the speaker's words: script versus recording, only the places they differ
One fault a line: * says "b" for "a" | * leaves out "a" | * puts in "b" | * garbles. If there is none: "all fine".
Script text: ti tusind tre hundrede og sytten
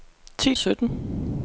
* leaves out "tusind tre hundrede"